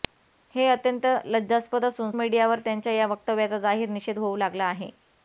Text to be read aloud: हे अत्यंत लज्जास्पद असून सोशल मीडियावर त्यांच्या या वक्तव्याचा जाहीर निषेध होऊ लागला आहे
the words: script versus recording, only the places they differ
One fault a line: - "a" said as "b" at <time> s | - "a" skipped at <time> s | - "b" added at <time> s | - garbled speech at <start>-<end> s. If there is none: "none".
- "सोशल" skipped at 2.1 s